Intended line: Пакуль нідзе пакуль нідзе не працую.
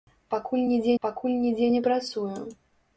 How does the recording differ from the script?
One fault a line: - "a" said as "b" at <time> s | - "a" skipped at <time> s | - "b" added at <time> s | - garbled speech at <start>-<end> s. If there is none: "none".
none